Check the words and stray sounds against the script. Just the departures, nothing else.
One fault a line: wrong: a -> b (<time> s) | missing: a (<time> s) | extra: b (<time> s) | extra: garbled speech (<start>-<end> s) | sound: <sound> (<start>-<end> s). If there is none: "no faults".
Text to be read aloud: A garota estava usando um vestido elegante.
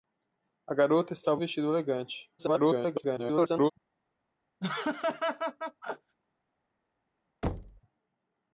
missing: usando (1.4 s)
extra: garbled speech (2.4-3.7 s)
sound: laugh (4.6-6.1 s)
sound: thud (7.4-7.8 s)